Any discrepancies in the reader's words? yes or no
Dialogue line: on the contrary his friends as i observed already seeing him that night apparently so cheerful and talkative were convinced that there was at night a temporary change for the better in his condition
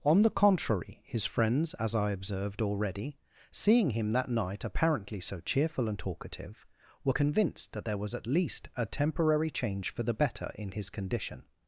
yes